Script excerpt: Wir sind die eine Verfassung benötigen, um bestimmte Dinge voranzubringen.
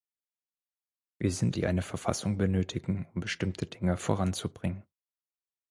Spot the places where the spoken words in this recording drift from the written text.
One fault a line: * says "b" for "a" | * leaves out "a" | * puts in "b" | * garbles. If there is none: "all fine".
all fine